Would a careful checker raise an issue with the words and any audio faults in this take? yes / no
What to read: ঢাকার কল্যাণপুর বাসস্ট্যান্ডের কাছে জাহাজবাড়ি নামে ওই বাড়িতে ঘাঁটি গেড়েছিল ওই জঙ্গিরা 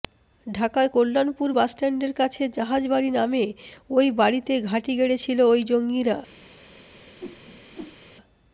yes